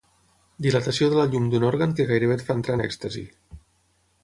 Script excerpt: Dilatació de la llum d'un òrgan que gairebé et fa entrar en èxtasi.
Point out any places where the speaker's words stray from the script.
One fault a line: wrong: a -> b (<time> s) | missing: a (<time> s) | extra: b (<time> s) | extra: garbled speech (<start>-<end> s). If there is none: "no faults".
no faults